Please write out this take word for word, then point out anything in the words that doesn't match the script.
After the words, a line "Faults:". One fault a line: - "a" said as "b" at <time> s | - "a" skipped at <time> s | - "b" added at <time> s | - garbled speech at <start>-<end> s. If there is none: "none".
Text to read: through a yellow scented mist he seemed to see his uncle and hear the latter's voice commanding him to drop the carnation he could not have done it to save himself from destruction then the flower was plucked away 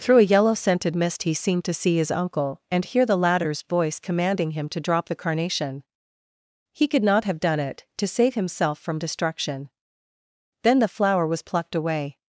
through a yellow scented mist he seemed to see his uncle and hear the latter's voice commanding him to drop the carnation he could not have done it to save himself from destruction then the flower was plucked away
Faults:
none